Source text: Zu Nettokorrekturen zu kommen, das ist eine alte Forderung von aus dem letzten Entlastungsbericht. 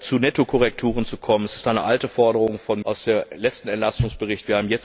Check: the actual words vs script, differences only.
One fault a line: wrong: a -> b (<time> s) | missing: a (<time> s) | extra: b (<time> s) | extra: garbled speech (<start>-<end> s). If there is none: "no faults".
no faults